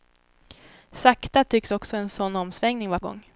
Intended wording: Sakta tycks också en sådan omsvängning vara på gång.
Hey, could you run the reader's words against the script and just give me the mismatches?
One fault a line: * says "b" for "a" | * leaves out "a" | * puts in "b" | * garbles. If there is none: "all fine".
* leaves out "på"